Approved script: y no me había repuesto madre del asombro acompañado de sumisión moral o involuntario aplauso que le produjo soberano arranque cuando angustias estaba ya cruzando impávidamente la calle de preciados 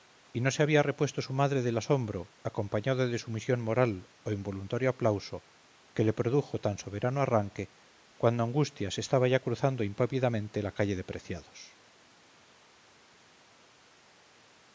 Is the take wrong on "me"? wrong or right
wrong